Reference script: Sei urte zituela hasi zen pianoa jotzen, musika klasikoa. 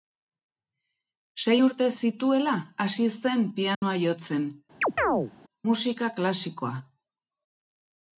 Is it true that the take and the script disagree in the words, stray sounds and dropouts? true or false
true